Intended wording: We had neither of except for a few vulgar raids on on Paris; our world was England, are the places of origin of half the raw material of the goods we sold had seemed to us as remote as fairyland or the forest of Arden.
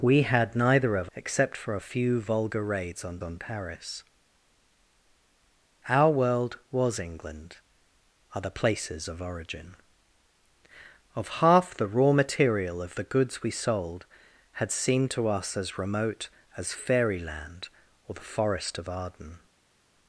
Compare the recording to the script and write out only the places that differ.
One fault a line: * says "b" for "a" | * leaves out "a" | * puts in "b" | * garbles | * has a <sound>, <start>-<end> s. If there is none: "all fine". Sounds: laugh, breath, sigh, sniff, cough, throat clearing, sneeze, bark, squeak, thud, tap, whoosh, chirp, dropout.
all fine